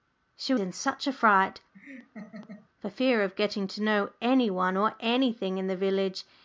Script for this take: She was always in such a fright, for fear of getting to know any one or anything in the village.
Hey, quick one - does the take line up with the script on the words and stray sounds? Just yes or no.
no